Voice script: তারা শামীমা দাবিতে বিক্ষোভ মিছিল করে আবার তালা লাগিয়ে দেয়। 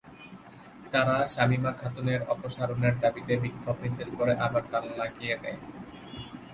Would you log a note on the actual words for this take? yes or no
yes